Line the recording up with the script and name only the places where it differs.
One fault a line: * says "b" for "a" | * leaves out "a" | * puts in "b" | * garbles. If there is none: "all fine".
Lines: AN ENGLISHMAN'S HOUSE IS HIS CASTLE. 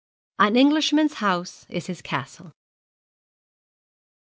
all fine